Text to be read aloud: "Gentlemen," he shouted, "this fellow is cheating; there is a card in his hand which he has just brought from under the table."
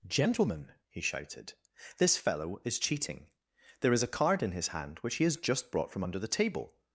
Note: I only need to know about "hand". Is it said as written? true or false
true